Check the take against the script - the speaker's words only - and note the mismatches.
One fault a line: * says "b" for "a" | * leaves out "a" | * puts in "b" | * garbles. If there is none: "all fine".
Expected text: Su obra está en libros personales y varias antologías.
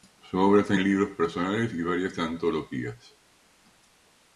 all fine